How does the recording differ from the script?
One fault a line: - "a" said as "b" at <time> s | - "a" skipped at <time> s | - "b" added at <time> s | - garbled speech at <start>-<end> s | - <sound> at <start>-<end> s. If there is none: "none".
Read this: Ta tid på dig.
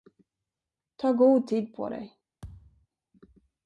- "god" added at 1.1 s
- thud at 2.4-2.9 s